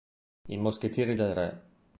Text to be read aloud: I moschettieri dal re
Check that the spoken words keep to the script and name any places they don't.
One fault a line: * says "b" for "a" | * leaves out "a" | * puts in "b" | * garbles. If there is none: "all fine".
* says "del" for "dal"